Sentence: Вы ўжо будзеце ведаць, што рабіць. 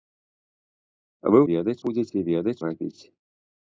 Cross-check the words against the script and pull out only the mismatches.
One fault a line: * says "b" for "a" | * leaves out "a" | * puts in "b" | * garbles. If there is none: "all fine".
* says "ведаць" for "ўжо"
* leaves out "што"